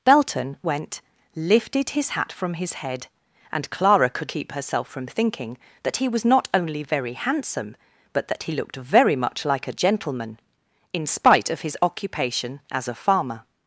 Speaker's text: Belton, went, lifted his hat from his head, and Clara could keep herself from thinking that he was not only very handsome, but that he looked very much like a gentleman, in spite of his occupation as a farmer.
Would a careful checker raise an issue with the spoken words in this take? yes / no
no